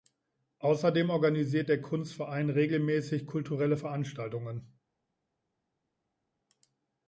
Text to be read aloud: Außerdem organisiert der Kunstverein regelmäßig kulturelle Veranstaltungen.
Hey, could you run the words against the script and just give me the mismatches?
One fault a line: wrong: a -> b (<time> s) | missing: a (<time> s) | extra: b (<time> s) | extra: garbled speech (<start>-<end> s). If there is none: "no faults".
no faults